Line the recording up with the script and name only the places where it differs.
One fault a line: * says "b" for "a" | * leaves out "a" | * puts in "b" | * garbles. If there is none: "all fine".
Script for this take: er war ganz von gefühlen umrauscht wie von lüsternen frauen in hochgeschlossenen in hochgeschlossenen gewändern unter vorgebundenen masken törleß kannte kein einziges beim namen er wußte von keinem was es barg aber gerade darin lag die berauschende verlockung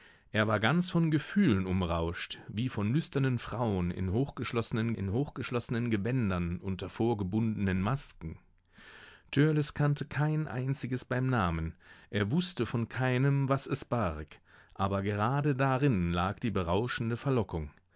all fine